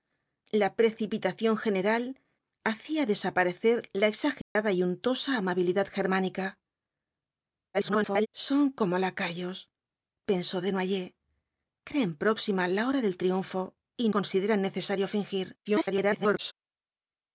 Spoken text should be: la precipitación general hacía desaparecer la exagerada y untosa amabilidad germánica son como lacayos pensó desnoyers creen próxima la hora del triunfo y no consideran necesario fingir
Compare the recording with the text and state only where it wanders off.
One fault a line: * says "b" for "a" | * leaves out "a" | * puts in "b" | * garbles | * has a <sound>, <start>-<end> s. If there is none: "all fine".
* has a dropout, 4.4-4.6 s
* garbles
* leaves out "no"
* garbles